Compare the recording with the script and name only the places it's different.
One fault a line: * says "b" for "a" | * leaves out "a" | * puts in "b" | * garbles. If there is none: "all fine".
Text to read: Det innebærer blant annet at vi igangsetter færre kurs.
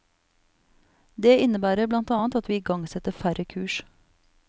all fine